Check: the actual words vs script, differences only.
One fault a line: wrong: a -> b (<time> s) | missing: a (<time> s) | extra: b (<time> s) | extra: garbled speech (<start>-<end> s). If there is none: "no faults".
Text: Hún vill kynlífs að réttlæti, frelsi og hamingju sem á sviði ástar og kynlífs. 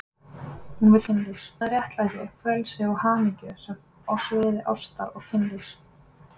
no faults